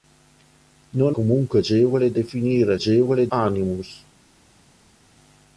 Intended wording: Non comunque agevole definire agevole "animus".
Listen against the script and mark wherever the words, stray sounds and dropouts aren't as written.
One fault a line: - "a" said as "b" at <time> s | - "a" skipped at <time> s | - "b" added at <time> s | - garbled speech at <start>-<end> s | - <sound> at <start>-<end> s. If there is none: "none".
none